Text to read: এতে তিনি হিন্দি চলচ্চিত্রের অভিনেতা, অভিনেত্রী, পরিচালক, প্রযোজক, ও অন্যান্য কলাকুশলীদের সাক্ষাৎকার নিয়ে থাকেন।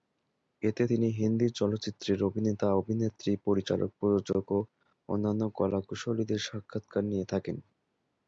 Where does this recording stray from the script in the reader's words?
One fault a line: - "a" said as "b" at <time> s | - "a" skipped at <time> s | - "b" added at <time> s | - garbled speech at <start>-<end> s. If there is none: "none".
none